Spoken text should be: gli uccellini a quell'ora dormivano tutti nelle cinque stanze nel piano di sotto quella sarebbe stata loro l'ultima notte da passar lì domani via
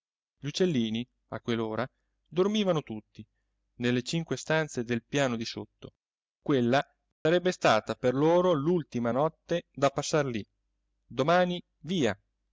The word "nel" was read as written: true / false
false